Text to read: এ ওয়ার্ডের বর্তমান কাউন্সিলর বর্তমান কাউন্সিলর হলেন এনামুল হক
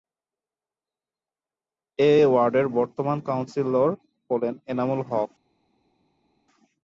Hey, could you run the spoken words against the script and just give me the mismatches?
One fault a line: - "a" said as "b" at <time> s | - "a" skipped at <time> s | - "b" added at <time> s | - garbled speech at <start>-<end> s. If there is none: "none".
- "বর্তমান কাউন্সিলর" skipped at 3.9 s